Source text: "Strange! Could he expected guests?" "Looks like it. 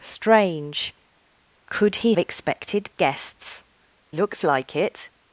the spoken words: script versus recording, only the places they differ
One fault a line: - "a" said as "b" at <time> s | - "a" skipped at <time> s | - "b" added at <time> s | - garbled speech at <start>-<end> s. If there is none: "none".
none